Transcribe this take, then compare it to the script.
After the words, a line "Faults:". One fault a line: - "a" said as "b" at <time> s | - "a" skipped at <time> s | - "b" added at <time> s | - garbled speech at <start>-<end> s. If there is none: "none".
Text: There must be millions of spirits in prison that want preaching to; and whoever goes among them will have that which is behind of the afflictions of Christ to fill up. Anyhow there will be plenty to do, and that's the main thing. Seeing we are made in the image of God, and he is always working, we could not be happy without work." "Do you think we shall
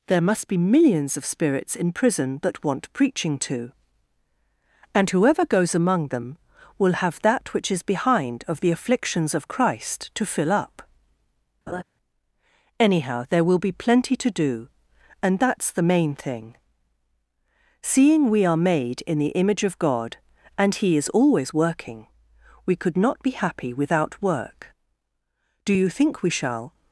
There must be millions of spirits in prison that want preaching to; and whoever goes among them will have that which is behind of the afflictions of Christ to fill up. Anyhow there will be plenty to do, and that's the main thing. Seeing we are made in the image of God, and he is always working, we could not be happy without work." "Do you think we shall
Faults:
none